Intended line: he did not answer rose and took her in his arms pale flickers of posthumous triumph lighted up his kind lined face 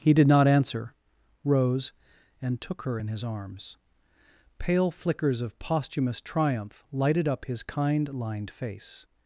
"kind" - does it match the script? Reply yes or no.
yes